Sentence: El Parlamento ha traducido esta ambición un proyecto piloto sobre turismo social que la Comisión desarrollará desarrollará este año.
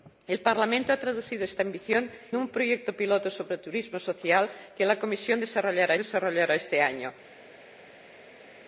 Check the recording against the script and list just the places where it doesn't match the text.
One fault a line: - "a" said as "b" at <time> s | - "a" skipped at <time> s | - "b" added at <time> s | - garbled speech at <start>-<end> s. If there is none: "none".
none